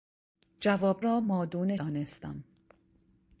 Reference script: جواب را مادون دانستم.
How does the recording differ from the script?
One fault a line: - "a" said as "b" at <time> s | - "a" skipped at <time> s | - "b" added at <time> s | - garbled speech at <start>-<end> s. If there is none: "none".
none